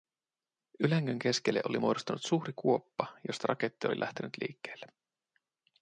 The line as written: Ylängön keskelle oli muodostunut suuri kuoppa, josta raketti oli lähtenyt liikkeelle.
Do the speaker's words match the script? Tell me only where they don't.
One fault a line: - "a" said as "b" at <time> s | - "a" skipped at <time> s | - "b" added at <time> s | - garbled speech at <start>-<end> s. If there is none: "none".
none